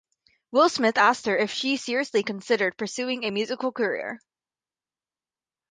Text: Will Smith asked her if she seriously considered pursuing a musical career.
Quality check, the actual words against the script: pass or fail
pass